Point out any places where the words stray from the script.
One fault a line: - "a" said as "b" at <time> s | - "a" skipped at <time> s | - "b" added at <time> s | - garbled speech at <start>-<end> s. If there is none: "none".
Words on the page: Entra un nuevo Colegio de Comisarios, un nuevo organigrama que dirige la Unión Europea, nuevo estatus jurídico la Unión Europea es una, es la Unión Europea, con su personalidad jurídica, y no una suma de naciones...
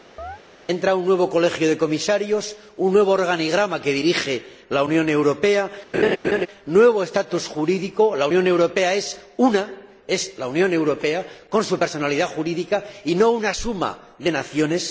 none